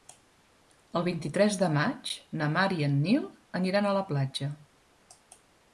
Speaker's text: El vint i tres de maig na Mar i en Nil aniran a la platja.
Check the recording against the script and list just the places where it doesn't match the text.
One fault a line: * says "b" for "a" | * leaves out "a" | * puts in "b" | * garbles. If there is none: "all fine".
all fine